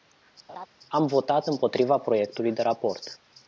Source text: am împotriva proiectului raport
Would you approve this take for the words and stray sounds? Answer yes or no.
no